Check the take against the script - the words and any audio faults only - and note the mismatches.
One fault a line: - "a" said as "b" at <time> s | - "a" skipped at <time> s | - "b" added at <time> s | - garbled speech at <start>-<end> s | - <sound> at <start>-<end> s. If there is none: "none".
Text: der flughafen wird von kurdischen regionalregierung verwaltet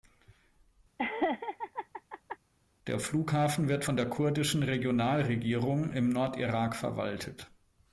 - laugh at 1.0-2.4 s
- "der" added at 4.0 s
- "im nordirak" added at 5.9 s